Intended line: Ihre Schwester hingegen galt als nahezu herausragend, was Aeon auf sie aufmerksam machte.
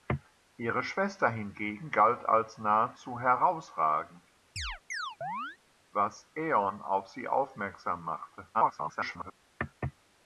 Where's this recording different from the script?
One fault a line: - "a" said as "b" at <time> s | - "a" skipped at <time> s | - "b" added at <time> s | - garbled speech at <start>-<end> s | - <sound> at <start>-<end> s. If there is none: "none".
- chirp at 4.6-5.6 s
- garbled speech at 8.5-9.3 s